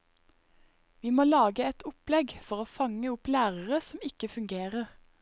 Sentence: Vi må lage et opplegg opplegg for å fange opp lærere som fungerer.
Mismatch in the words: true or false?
true